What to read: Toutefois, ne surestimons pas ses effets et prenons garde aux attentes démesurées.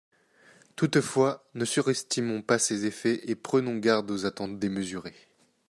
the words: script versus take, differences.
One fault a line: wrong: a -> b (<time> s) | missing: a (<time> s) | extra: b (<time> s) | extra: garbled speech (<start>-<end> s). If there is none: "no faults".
no faults